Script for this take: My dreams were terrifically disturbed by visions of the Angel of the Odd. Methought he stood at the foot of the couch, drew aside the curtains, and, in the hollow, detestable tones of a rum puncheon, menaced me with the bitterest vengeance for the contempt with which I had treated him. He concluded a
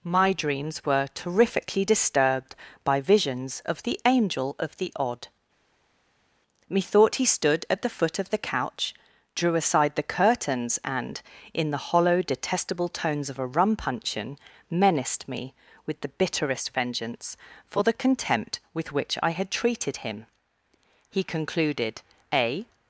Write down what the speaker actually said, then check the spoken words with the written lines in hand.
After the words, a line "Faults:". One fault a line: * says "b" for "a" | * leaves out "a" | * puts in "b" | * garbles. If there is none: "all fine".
My dreams were terrifically disturbed by visions of the Angel of the Odd. Methought he stood at the foot of the couch, drew aside the curtains, and, in the hollow, detestable tones of a rum puncheon, menaced me with the bitterest vengeance for the contempt with which I had treated him. He concluded a
Faults:
all fine